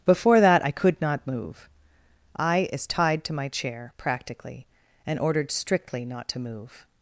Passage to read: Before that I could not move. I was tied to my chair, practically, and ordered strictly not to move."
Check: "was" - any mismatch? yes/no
yes